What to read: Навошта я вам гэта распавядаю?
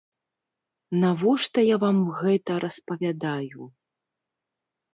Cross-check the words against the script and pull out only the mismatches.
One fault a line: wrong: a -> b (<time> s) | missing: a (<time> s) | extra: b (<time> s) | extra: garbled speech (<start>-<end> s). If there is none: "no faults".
no faults